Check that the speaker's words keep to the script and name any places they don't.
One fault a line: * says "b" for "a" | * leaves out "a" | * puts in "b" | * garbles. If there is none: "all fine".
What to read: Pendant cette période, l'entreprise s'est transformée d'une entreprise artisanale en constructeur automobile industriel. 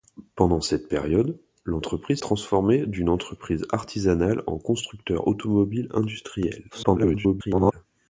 * leaves out "s'est"
* garbles